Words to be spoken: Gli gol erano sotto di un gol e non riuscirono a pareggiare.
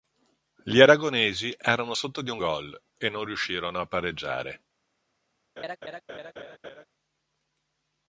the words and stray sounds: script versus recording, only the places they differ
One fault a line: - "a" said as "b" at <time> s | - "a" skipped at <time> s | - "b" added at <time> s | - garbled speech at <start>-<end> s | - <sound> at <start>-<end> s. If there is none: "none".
- "gol" said as "aragonesi" at 0.8 s
- laugh at 5.6-6.9 s